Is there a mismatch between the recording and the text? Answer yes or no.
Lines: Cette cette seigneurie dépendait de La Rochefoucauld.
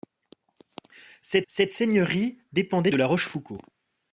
no